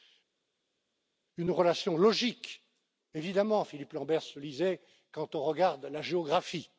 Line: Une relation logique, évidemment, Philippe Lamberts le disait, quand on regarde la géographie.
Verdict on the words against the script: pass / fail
pass